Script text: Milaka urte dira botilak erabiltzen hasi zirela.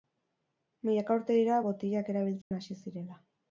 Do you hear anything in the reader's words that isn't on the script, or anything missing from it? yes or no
no